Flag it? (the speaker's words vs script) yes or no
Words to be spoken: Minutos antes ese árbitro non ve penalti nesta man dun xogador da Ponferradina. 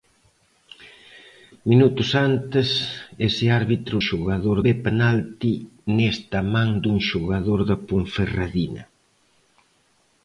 yes